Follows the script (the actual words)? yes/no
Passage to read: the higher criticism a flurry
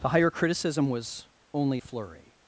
no